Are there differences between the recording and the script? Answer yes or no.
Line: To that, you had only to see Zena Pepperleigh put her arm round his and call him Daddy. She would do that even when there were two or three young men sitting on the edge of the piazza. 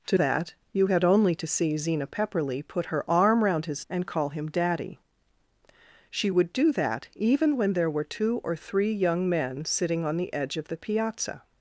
no